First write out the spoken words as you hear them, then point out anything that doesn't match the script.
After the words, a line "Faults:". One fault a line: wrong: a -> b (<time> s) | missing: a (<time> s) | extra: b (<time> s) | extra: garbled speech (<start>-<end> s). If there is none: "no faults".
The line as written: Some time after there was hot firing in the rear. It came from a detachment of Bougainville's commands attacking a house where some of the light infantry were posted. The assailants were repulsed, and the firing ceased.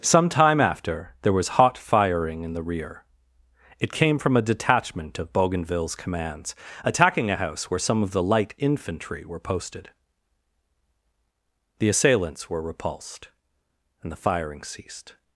Some time after there was hot firing in the rear. It came from a detachment of Bougainville's commands attacking a house where some of the light infantry were posted. The assailants were repulsed, and the firing ceased.
Faults:
no faults